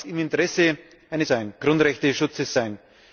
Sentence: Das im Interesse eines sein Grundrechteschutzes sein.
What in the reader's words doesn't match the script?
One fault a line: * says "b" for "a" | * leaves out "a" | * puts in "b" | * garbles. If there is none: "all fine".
all fine